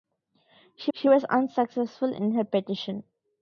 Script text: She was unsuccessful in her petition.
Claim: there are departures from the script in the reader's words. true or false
true